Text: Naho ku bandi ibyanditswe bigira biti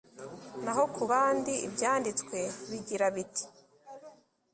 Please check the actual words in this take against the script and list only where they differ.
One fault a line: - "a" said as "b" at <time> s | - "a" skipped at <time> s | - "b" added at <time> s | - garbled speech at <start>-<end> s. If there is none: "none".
none